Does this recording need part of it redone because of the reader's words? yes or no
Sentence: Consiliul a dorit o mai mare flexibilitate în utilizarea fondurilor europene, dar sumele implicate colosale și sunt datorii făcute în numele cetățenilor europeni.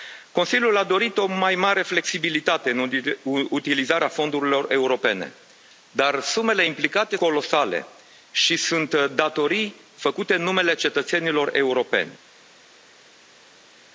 no